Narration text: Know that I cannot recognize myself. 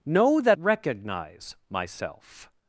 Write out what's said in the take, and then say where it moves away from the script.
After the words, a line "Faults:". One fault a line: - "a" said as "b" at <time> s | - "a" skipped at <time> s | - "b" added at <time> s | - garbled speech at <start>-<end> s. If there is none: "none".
Know that recognize myself.
Faults:
- "I cannot" skipped at 0.6 s